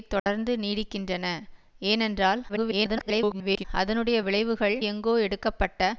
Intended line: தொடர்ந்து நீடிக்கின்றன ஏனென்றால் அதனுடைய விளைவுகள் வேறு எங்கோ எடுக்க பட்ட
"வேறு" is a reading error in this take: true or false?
true